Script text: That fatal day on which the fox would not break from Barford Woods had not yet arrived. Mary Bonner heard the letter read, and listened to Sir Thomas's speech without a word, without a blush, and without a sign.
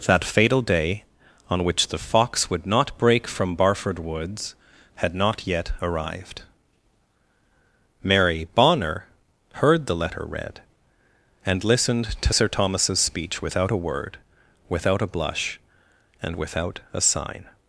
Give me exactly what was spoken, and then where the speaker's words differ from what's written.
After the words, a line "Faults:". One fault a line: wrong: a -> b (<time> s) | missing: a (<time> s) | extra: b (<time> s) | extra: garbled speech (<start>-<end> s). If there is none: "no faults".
That fatal day on which the fox would not break from Barford Woods had not yet arrived. Mary Bonner heard the letter read, and listened to Sir Thomas's speech without a word, without a blush, and without a sign.
Faults:
no faults